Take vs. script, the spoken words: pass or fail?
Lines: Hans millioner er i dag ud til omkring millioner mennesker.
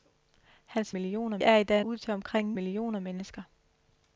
pass